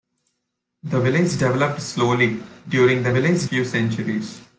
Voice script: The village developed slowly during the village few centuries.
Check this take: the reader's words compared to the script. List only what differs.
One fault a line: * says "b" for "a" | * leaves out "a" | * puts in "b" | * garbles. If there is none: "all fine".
all fine